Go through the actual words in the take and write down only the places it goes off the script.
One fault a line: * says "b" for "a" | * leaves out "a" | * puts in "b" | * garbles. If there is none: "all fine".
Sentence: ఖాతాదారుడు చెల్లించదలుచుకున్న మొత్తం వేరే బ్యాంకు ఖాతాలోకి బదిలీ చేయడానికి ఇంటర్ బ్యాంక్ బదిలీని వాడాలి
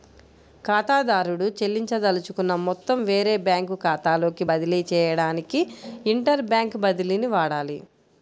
all fine